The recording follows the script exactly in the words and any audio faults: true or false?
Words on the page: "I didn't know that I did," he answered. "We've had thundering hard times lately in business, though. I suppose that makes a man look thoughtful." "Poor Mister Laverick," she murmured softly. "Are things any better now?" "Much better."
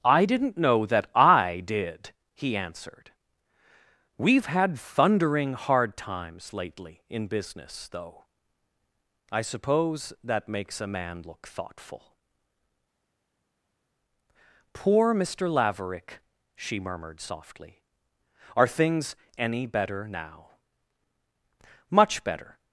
true